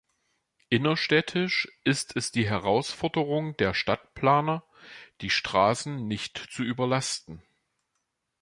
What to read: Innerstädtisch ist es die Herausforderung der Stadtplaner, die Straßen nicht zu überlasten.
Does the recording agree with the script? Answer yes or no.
yes